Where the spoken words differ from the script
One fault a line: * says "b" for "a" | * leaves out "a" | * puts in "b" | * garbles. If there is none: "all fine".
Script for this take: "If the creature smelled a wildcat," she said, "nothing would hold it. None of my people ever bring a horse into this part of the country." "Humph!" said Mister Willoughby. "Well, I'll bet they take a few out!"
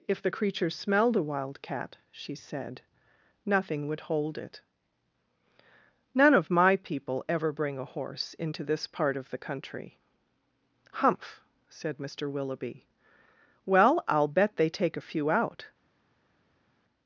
all fine